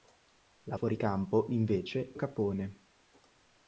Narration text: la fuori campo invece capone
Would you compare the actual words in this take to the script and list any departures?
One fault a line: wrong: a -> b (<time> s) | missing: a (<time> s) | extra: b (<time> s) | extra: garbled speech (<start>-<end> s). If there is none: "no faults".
no faults